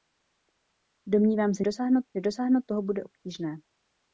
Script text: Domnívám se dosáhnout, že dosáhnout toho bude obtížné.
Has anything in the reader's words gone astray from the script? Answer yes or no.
no